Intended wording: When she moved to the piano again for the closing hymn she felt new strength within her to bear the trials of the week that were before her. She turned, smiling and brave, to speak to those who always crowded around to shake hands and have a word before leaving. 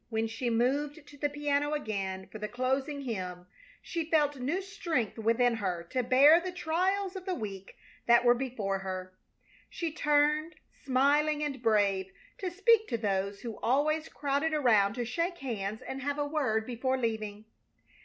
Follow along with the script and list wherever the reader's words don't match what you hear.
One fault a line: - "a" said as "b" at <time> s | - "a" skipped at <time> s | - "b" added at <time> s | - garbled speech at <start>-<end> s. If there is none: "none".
none